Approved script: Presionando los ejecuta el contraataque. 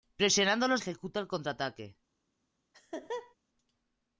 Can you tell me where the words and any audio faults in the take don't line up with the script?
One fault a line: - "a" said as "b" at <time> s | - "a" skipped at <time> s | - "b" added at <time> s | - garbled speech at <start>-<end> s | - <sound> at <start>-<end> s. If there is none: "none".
- laugh at 2.7-3.4 s